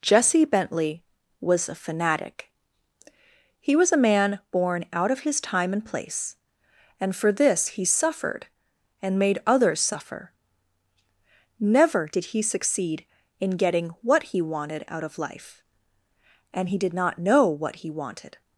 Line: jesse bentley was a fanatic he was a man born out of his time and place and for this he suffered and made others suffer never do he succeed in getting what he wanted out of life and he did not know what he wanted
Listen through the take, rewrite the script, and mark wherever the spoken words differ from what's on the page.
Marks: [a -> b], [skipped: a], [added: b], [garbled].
jesse bentley was a fanatic he was a man born out of his time and place and for this he suffered and made others suffer never [do -> did] he succeed in getting what he wanted out of life and he did not know what he wanted